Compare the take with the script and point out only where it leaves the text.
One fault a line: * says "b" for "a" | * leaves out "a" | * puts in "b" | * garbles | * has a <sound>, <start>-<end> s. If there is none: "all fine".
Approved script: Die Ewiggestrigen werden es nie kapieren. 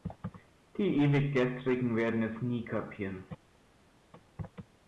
all fine